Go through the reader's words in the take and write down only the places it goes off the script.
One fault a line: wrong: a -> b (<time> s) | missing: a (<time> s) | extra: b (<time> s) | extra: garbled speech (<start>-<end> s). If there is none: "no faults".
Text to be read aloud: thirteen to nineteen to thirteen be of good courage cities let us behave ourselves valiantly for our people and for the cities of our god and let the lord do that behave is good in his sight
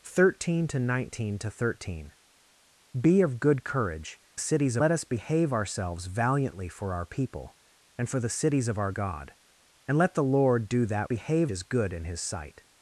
no faults